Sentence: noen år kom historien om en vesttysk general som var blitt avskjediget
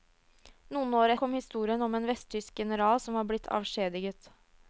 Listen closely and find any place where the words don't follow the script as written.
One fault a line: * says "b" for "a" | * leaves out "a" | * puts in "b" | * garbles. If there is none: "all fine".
all fine